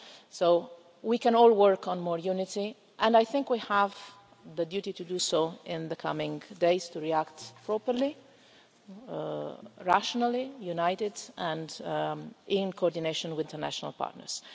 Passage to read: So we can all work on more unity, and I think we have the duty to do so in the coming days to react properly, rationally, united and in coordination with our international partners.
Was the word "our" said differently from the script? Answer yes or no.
yes